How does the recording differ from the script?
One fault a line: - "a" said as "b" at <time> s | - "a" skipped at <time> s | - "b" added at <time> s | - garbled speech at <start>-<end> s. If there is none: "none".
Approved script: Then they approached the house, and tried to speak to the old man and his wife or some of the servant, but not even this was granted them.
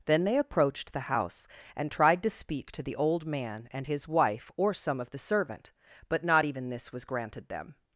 none